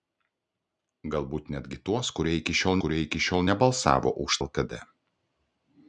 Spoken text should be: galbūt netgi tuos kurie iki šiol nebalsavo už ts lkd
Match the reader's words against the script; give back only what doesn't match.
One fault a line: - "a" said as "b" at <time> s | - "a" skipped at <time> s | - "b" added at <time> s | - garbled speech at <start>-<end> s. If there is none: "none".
- "kurie iki šiol" added at 2.8 s
- "ts" skipped at 4.4 s